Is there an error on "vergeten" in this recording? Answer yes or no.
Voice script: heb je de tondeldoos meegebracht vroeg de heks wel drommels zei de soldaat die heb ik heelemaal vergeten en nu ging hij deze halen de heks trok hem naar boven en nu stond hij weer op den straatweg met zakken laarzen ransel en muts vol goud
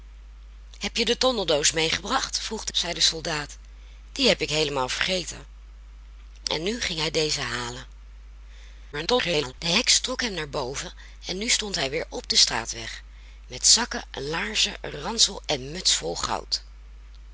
no